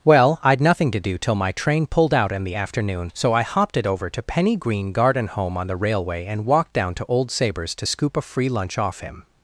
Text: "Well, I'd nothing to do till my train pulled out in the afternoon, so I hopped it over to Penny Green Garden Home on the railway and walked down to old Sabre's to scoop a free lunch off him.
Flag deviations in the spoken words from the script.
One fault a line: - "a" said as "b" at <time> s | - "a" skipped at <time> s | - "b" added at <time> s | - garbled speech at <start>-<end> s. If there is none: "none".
none